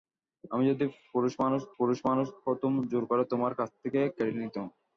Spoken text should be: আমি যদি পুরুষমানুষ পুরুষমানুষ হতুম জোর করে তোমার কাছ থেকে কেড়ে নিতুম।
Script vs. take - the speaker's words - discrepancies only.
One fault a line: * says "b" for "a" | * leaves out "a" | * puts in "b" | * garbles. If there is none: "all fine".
all fine